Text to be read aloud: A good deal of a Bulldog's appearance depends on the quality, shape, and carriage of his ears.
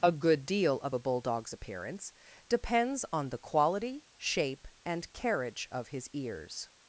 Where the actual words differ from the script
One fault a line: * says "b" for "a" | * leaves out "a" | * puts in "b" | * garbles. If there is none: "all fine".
all fine